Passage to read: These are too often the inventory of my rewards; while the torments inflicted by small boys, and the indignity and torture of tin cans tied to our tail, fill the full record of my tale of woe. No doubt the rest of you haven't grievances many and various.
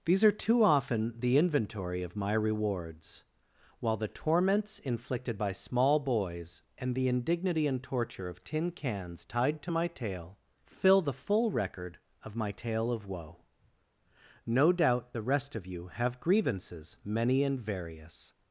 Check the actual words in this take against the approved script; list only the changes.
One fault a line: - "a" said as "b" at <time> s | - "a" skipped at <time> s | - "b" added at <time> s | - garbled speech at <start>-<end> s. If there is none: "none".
- "our" said as "my" at 9.7 s
- "haven't" said as "have" at 15.9 s